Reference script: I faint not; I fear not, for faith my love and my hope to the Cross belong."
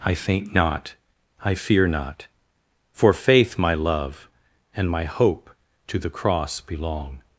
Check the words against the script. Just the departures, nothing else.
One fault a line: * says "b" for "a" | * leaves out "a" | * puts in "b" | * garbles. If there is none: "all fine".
all fine